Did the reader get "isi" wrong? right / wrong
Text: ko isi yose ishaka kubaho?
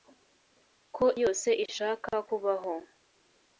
wrong